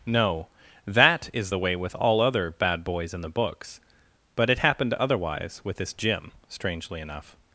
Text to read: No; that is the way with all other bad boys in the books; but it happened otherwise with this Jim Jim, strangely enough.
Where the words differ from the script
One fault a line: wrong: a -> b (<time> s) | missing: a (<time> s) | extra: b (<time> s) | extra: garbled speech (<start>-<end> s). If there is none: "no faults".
missing: Jim (6.3 s)